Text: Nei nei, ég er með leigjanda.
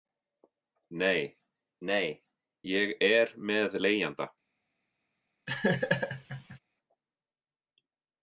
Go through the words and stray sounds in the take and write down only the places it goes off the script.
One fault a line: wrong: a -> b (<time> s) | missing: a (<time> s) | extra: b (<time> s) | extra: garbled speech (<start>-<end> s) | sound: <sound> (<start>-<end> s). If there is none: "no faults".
sound: laugh (5.5-6.6 s)